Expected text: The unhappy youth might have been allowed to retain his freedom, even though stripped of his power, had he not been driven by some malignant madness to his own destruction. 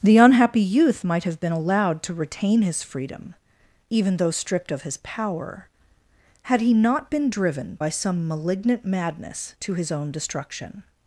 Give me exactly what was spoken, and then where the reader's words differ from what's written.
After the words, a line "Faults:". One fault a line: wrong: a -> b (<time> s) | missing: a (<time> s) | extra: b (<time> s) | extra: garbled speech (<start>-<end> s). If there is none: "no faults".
The unhappy youth might have been allowed to retain his freedom, even though stripped of his power, had he not been driven by some malignant madness to his own destruction.
Faults:
no faults